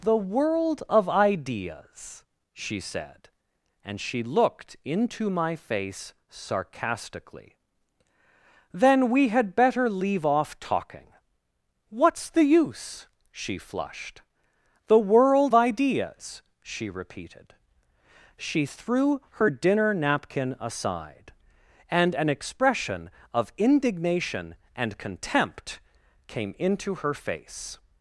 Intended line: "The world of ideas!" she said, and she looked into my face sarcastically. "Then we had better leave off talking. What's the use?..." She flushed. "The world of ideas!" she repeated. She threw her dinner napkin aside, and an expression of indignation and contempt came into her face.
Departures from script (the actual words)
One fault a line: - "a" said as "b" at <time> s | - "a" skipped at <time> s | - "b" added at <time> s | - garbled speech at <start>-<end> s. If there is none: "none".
- "of" skipped at 15.5 s